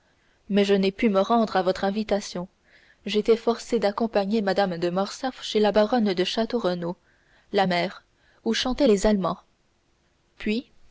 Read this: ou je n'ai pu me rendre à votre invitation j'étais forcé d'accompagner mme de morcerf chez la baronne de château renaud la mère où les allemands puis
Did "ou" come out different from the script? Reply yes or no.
yes